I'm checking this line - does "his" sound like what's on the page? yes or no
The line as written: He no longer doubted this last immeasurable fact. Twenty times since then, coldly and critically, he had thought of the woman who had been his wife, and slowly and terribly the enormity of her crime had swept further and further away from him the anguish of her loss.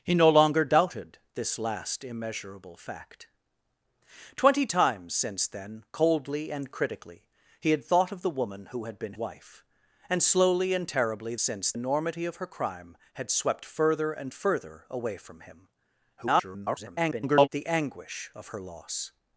no